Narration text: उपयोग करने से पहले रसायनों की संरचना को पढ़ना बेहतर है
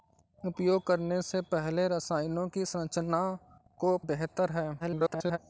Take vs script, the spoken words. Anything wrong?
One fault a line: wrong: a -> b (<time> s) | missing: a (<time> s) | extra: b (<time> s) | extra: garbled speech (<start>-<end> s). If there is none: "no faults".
missing: पढ़ना (4.0 s)
extra: garbled speech (4.8-5.4 s)